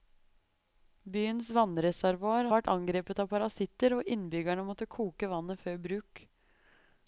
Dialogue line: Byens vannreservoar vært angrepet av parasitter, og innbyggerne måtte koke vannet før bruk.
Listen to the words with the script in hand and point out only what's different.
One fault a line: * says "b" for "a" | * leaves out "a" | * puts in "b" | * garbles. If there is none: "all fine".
all fine